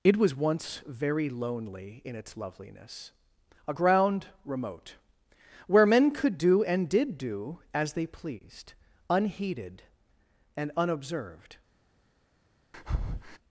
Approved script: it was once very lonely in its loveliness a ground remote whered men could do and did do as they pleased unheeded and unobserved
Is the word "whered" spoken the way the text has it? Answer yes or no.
no